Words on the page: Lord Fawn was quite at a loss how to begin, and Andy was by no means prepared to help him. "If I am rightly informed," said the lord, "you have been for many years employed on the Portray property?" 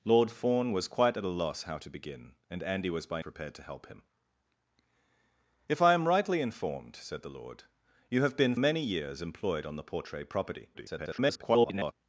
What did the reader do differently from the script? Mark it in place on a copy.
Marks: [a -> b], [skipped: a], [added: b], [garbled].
Lord Fawn was quite at a loss how to begin, and Andy was by [skipped: no means] prepared to help him. "If I am rightly informed," said the lord, "you have been [skipped: for] many years employed on the Portray property?" [garbled]